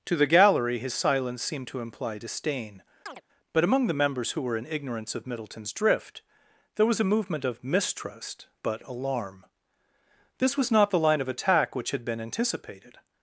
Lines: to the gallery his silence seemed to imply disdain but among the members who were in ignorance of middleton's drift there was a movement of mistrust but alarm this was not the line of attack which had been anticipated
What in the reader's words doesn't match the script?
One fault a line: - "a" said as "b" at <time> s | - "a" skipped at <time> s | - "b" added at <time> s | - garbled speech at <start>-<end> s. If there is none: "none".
none